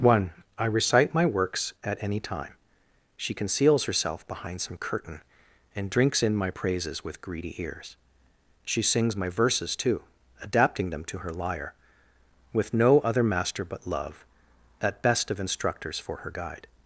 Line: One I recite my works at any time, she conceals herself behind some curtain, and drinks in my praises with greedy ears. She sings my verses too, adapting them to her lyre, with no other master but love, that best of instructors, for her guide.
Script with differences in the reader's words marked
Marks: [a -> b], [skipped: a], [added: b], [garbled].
One I recite my works at any time, she conceals herself behind some curtain, and drinks in my praises with greedy ears. She sings my verses too, adapting them to her lyre, with no other master but love, that best of instructors, for her guide.